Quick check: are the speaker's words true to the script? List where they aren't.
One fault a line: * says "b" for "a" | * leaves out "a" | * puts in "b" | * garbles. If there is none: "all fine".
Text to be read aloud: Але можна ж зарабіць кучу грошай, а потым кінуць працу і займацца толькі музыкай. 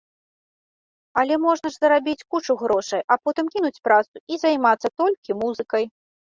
all fine